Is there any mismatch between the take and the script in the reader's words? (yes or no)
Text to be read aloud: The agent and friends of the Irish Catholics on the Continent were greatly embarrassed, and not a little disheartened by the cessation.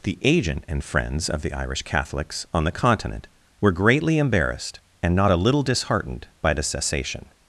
no